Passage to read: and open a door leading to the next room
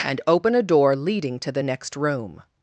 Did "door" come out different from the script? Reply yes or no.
no